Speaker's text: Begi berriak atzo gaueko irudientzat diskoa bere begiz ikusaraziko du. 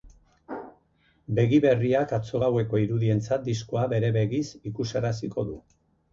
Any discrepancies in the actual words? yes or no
no